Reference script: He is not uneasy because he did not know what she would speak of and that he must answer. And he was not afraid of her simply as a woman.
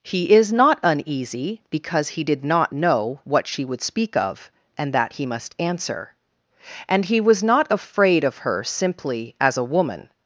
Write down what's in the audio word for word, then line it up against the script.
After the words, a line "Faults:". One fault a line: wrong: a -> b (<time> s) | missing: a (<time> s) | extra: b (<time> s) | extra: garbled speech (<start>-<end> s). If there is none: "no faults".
He is not uneasy because he did not know what she would speak of and that he must answer. And he was not afraid of her simply as a woman.
Faults:
no faults